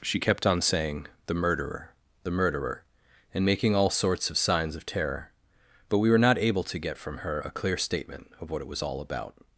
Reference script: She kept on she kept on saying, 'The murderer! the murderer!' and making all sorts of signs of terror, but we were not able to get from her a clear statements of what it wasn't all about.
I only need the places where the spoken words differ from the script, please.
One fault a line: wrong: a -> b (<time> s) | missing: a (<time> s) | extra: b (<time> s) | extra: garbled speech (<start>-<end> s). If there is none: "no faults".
missing: she kept on (0.6 s)
wrong: statements -> statement (7.8 s)
wrong: wasn't -> was (8.7 s)